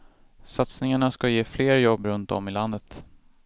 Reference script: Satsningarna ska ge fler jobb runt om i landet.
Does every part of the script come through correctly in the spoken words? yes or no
yes